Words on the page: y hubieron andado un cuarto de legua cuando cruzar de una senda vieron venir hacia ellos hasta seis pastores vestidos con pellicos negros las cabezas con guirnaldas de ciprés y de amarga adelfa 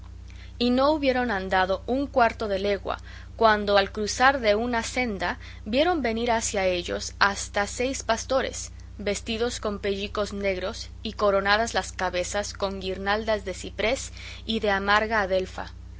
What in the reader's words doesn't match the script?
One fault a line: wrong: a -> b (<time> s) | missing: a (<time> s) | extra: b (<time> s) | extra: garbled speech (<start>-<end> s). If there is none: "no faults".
extra: no (0.7 s)
extra: al (3.8 s)
extra: y coronadas (11.0 s)